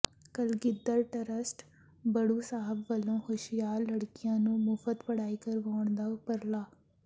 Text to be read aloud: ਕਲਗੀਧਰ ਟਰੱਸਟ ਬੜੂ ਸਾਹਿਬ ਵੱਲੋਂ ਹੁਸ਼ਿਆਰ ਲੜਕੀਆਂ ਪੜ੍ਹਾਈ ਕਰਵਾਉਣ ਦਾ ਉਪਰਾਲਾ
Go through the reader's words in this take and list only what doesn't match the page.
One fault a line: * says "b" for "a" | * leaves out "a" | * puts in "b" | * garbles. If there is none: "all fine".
* puts in "ਨੂੰ ਮੁਫ਼ਤ"